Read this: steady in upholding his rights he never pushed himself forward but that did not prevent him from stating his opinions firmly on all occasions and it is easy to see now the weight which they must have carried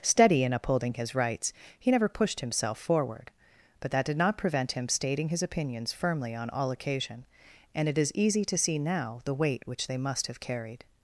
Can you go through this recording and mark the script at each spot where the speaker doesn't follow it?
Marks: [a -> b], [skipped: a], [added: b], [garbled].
steady in upholding his rights he never pushed himself forward but that did not prevent him [skipped: from] stating his opinions firmly on all [occasions -> occasion] and it is easy to see now the weight which they must have carried